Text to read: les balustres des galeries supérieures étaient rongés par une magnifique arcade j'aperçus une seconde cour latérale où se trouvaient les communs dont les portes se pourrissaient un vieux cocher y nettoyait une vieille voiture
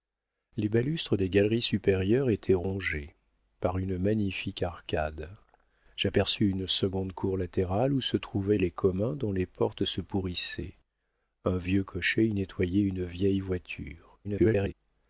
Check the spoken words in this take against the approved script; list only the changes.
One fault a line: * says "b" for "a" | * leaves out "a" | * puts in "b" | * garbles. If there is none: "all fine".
* garbles